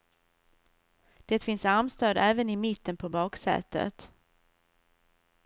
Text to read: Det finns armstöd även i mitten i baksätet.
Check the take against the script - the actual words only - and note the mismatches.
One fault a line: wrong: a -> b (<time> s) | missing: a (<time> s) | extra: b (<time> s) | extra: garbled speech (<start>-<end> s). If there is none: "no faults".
wrong: i -> på (3.0 s)